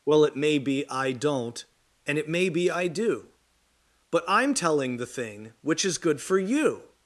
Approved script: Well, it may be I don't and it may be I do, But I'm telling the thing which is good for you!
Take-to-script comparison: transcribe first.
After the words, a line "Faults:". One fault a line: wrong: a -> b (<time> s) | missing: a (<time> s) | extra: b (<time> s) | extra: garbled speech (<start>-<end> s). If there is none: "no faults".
Well, it may be I don't and it may be I do, But I'm telling the thing which is good for you!
Faults:
no faults